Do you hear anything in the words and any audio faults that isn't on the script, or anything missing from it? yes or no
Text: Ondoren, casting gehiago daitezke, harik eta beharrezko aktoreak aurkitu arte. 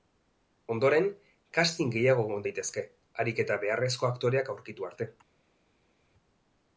yes